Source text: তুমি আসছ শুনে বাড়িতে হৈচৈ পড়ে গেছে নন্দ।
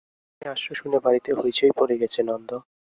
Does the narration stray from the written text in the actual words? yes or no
no